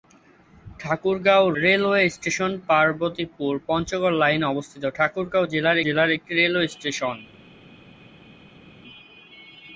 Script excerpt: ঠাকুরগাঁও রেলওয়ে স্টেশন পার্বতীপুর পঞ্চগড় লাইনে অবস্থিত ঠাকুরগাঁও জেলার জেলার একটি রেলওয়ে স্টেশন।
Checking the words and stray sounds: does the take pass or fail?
pass